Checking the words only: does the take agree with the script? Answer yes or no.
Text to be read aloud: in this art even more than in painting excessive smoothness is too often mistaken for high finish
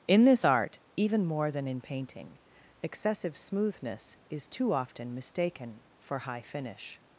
yes